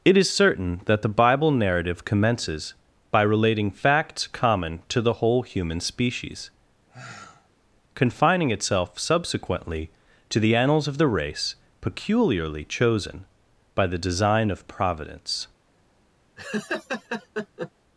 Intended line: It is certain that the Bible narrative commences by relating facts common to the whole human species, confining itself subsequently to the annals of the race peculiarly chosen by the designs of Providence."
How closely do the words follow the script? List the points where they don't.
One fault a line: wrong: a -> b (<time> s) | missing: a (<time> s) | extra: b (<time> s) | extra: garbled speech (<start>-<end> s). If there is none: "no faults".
wrong: designs -> design (14.0 s)